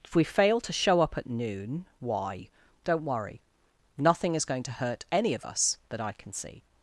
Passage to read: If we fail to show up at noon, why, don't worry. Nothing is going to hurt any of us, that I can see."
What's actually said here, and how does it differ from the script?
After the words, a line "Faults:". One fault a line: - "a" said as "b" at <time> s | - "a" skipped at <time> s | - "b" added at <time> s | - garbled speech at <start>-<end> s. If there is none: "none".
If we fail to show up at noon, why, don't worry. Nothing is going to hurt any of us, that I can see."
Faults:
none